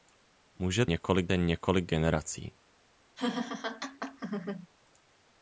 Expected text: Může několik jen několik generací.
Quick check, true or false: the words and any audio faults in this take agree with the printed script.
false